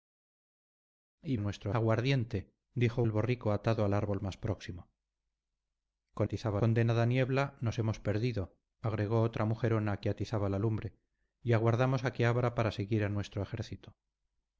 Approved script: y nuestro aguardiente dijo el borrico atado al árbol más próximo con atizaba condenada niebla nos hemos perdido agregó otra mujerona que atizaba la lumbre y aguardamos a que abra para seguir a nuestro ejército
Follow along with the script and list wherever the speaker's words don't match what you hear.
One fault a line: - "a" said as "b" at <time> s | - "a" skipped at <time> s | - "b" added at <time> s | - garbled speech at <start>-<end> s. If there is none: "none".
none